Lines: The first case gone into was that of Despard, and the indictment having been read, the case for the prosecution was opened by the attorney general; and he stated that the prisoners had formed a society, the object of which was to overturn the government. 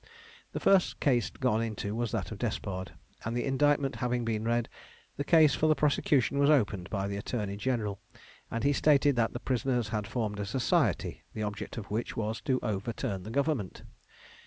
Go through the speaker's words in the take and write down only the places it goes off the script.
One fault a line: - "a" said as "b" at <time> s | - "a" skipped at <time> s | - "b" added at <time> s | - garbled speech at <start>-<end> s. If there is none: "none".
none